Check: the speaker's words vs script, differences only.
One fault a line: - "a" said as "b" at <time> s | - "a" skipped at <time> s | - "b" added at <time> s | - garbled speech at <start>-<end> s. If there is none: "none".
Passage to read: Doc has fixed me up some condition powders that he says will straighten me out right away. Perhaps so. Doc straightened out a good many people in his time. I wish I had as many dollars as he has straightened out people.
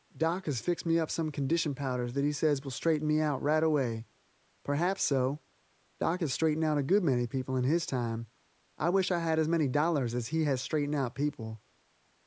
- "has" added at 6.2 s